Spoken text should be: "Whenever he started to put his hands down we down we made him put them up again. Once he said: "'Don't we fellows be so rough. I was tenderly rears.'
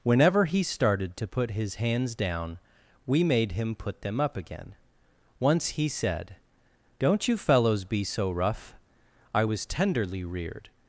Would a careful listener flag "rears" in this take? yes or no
yes